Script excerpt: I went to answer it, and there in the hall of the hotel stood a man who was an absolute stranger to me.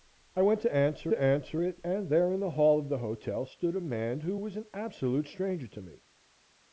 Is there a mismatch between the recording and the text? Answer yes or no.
yes